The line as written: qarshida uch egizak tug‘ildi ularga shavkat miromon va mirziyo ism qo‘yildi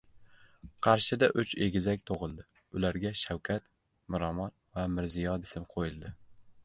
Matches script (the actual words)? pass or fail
pass